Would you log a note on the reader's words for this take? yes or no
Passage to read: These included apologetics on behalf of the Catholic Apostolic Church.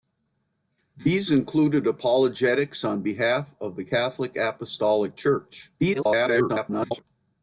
yes